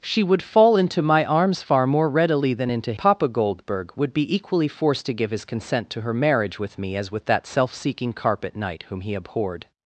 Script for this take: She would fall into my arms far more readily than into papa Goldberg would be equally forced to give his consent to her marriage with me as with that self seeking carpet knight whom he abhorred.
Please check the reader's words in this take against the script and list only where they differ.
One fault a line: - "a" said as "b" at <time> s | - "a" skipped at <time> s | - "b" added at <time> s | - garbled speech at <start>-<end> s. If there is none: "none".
none